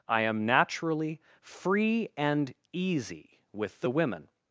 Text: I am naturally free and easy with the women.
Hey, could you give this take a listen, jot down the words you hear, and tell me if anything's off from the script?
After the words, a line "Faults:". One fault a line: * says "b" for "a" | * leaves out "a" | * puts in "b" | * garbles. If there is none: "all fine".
I am naturally free and easy with the women.
Faults:
all fine